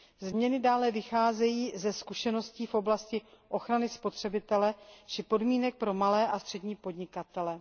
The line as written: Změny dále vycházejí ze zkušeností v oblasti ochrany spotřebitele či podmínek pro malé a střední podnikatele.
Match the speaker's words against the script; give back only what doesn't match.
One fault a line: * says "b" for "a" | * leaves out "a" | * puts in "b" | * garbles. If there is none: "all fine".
all fine